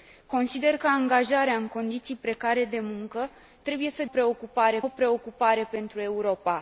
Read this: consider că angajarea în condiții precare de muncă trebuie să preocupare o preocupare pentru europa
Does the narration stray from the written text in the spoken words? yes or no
no